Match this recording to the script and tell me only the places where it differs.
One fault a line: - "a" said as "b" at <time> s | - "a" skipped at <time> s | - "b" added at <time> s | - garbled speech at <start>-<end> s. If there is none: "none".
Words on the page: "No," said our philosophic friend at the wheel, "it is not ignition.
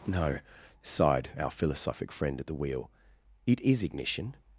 - "said" said as "sighed" at 0.8 s
- "not" skipped at 3.8 s